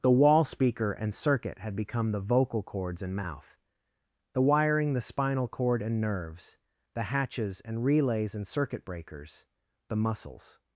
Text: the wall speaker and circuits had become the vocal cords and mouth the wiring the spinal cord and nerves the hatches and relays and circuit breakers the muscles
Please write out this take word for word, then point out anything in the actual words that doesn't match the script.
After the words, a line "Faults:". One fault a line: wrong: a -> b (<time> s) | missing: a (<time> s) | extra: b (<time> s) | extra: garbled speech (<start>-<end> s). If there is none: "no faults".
the wall speaker and circuit had become the vocal cords and mouth the wiring the spinal cord and nerves the hatches and relays and circuit breakers the muscles
Faults:
wrong: circuits -> circuit (1.1 s)